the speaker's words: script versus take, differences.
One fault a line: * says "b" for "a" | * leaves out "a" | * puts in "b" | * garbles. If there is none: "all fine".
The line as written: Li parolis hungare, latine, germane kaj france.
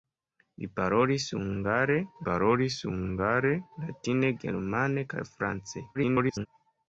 * puts in "parolis hungare"
* garbles